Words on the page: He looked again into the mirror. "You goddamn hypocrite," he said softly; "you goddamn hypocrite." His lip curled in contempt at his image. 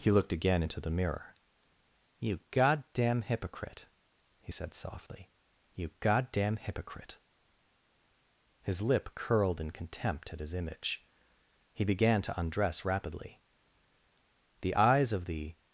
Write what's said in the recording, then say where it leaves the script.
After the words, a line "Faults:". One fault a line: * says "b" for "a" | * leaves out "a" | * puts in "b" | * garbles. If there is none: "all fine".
He looked again into the mirror. "You goddamn hypocrite," he said softly; "you goddamn hypocrite." His lip curled in contempt at his image. He began to undress rapidly. The eyes of the
Faults:
* puts in "He began to undress rapidly The eyes of the"